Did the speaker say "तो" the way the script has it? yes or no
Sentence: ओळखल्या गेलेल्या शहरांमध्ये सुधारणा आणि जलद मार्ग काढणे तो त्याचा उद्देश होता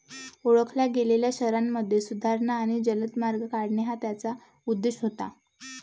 no